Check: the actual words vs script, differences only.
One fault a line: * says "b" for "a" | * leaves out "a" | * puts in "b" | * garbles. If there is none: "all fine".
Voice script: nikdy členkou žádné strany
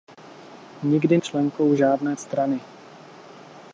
all fine